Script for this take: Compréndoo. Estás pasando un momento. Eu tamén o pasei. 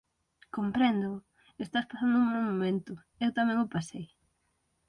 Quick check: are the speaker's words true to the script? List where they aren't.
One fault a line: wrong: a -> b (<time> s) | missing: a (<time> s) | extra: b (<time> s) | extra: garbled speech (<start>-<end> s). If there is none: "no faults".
extra: mal (2.3 s)